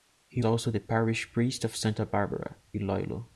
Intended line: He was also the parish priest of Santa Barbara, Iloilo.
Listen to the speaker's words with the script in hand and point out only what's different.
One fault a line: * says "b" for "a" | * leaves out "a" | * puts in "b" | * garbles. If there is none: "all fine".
* leaves out "was"